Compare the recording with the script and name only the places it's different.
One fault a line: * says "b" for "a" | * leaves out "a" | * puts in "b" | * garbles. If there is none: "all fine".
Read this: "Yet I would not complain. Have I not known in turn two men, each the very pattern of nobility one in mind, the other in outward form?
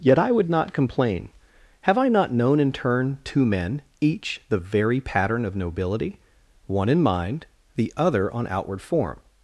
* says "on" for "in"